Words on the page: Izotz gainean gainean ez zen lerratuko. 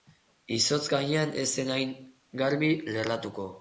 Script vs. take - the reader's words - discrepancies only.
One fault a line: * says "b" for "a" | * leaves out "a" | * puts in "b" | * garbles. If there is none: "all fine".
* leaves out "gainean"
* puts in "hain garbi"